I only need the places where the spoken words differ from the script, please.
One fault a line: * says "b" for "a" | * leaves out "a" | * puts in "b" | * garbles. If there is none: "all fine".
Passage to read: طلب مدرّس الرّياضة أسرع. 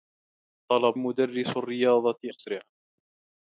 all fine